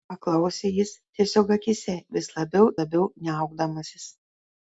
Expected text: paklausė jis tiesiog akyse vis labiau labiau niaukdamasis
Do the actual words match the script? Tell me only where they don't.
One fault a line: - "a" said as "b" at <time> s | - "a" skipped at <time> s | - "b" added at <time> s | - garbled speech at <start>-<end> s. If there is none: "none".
none